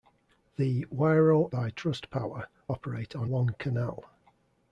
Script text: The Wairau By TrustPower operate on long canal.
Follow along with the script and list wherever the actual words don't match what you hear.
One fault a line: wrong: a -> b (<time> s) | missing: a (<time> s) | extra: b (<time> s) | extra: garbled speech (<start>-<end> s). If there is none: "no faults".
no faults